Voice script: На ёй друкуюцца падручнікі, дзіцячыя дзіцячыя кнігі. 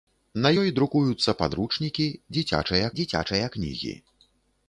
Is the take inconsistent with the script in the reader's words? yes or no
no